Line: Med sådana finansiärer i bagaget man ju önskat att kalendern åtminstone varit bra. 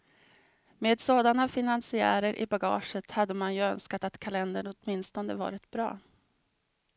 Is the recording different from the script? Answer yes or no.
yes